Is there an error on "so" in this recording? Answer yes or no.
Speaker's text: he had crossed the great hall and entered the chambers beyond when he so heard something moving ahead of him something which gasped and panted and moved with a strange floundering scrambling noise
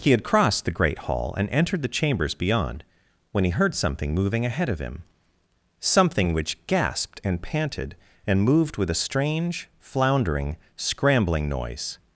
yes